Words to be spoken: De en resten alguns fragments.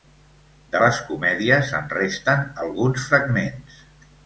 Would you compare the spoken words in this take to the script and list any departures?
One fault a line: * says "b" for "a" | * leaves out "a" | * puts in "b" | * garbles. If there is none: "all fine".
* puts in "les comèdies"